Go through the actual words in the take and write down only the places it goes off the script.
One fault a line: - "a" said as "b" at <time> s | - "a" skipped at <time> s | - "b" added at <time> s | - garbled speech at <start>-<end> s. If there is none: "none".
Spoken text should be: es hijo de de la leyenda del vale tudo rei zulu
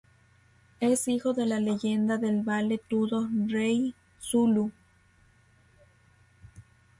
- "de" skipped at 1.4 s